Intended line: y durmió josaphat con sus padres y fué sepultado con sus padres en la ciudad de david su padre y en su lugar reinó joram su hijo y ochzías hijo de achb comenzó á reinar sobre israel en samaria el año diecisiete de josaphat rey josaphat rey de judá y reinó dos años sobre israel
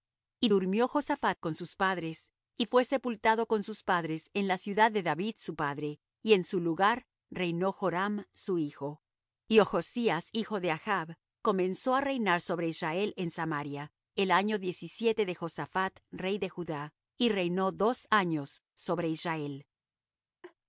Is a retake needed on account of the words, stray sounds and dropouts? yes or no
yes